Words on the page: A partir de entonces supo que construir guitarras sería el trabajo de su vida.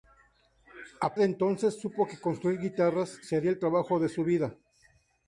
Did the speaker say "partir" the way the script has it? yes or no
no